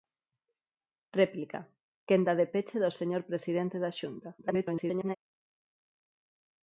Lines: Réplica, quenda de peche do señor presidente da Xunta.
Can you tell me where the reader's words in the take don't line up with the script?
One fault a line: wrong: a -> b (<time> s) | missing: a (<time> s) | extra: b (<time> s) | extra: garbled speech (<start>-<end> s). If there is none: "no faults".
extra: garbled speech (4.4-5.2 s)